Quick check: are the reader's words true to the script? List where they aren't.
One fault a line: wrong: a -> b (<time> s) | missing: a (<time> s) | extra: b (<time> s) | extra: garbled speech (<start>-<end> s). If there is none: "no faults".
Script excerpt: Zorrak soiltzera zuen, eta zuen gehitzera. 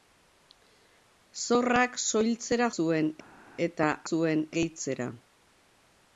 no faults